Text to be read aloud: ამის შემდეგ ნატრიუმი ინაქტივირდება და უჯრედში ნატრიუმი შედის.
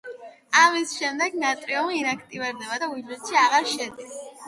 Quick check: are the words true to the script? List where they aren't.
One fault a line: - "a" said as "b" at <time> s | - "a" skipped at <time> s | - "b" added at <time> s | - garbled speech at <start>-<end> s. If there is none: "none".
- "ნატრიუმი" said as "აღარ" at 3.4 s